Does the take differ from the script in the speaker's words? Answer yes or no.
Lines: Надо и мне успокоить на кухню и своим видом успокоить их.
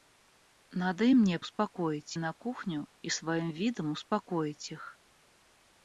no